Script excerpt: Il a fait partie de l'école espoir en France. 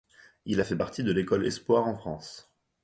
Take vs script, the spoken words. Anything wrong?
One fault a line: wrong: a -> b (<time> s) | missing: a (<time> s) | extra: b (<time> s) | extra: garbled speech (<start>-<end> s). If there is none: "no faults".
no faults